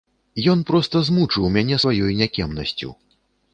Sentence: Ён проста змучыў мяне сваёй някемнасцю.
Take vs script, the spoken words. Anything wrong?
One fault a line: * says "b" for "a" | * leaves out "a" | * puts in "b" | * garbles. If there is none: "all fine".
all fine